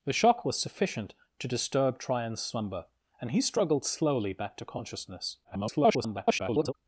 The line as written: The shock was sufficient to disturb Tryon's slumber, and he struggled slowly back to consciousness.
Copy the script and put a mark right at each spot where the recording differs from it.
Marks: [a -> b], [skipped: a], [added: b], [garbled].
The shock was sufficient to disturb Tryon's slumber, and he struggled slowly back to consciousness. [garbled]